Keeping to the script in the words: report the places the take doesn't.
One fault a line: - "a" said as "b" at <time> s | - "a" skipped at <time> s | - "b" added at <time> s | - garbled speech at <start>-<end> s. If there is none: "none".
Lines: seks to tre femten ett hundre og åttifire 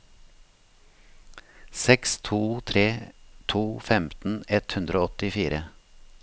- "to" added at 3.5 s